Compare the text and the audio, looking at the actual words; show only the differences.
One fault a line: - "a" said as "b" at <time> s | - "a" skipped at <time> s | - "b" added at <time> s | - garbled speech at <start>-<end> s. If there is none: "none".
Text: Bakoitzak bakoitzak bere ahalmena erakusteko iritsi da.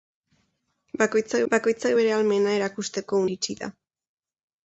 none